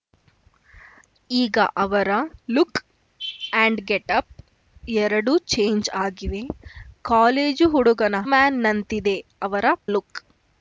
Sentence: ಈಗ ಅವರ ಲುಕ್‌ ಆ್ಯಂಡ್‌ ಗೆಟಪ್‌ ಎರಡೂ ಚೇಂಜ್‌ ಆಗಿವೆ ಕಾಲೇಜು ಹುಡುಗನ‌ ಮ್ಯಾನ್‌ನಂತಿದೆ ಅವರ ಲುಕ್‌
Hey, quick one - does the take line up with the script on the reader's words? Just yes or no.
yes